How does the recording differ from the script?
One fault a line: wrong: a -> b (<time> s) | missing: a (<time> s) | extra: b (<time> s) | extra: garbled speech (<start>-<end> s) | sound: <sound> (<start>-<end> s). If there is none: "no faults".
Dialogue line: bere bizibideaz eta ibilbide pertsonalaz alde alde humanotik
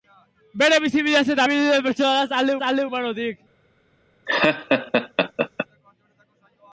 sound: laugh (4.3-5.7 s)